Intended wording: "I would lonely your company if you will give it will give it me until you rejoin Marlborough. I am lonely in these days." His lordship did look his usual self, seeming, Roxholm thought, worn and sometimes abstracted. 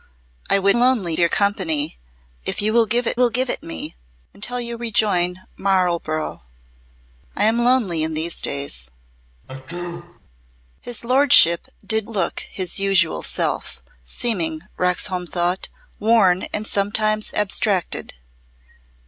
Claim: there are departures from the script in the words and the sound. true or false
true